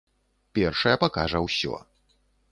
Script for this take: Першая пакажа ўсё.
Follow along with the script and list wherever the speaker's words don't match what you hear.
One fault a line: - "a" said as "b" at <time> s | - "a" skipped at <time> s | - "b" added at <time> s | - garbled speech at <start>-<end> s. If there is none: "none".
none